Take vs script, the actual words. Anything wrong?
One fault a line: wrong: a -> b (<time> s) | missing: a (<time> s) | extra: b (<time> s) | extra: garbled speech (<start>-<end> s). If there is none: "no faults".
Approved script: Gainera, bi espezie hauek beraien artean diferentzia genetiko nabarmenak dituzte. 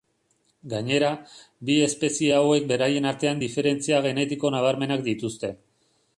no faults